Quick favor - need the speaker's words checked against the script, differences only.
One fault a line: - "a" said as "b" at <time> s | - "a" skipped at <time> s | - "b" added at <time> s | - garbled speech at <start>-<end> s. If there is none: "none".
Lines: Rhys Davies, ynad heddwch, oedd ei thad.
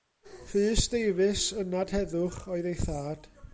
none